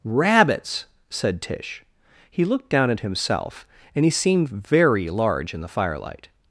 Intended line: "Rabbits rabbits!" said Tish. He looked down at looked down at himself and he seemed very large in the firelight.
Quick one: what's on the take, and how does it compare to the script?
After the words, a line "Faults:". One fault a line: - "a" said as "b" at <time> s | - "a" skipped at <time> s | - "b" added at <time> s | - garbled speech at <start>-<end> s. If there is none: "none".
"Rabbits!" said Tish. He looked down at himself and he seemed very large in the firelight.
Faults:
- "rabbits" skipped at 0.8 s
- "looked down at" skipped at 3.0 s